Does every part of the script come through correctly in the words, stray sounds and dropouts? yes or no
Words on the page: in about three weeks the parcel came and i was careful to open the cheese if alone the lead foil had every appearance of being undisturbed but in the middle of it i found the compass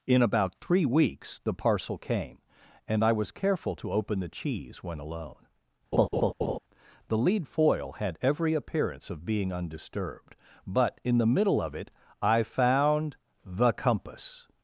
no